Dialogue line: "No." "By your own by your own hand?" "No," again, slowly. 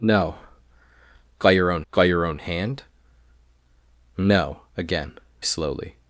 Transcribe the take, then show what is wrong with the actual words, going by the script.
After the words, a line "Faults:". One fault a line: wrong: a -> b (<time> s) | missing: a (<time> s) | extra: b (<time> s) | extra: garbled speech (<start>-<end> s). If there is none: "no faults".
"No." "By your own by your own hand?" "No," again, slowly.
Faults:
no faults